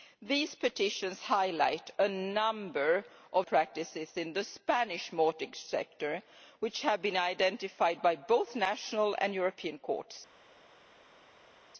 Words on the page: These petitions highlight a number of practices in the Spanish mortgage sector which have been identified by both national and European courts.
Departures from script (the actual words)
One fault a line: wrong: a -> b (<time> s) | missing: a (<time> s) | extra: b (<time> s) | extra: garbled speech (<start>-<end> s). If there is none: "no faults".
no faults